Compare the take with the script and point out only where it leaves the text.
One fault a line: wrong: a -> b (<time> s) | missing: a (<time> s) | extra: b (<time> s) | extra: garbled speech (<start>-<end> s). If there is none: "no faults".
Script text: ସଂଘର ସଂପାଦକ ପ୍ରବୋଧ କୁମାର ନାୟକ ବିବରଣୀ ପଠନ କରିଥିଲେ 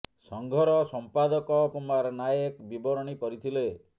missing: ପ୍ରବୋଧ (1.6 s)
missing: ପଠନ (3.2 s)